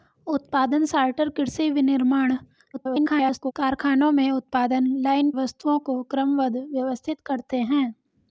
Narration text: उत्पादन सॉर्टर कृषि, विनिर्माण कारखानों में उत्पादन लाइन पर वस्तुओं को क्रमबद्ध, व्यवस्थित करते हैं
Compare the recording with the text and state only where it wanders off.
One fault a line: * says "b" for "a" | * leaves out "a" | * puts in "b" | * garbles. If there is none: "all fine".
* garbles
* leaves out "पर"